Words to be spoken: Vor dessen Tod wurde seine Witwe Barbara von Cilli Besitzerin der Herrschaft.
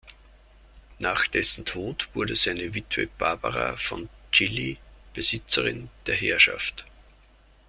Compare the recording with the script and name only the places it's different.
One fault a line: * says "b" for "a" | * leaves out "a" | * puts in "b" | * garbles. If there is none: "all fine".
* says "Nach" for "Vor"